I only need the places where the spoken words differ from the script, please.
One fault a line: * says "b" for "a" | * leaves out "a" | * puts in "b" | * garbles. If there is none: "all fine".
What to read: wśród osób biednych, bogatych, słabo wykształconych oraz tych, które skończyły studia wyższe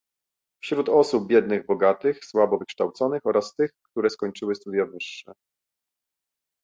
all fine